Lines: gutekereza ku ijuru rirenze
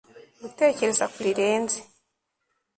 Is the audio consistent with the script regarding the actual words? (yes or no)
no